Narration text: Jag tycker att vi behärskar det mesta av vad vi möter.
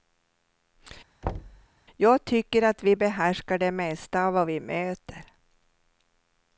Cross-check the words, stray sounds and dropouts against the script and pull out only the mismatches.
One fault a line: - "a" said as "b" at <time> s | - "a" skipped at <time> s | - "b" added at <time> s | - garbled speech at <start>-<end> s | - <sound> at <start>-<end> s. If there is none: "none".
- thud at 1.2-1.7 s